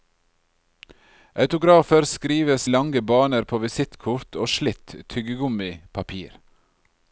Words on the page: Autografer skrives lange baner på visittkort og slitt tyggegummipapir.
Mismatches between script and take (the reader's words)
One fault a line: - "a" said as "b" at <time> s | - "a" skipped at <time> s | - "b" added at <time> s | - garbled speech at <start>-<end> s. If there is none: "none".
none